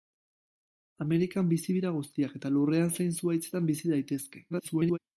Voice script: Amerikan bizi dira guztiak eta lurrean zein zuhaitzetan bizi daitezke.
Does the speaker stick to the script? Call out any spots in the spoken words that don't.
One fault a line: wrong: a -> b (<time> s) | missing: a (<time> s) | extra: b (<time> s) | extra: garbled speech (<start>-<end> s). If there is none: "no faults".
extra: garbled speech (4.5-5.0 s)